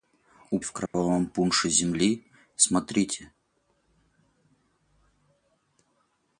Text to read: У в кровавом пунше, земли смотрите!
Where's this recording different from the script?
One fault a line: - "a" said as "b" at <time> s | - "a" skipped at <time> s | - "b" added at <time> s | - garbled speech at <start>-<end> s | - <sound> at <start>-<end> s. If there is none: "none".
- dropout at 0.9-0.9 s